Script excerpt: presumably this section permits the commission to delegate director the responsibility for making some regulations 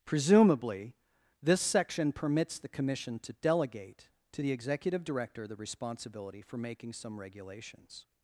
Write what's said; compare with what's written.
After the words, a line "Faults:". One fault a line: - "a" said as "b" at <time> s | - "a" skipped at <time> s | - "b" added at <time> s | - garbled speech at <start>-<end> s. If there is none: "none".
presumably this section permits the commission to delegate to the executive director the responsibility for making some regulations
Faults:
- "to the executive" added at 4.3 s